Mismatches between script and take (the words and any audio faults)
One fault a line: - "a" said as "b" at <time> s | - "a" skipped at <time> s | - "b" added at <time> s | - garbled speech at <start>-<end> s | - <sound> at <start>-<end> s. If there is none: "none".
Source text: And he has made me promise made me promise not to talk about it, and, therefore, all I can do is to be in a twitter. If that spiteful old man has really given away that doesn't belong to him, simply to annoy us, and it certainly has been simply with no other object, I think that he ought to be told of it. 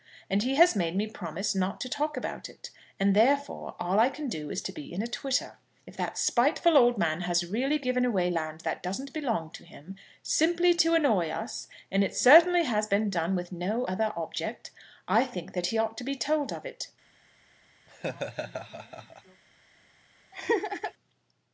- "made me promise" skipped at 1.5 s
- "land" added at 8.3 s
- "simply" said as "done" at 13.1 s
- laugh at 17.9-19.4 s
- laugh at 20.3-20.9 s